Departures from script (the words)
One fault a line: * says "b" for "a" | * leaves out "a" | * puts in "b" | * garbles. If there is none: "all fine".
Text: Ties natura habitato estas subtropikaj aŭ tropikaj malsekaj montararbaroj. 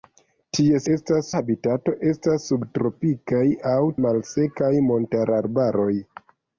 * says "estas" for "natura"
* leaves out "tropikaj"